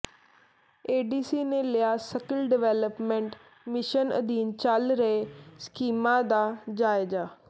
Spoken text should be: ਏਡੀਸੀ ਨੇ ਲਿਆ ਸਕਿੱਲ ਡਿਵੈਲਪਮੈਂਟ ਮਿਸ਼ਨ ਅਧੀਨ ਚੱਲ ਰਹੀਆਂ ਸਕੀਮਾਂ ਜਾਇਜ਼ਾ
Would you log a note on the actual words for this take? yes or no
yes